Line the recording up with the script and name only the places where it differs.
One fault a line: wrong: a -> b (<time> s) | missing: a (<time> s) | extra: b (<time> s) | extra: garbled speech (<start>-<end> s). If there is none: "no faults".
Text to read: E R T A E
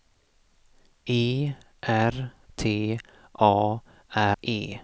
no faults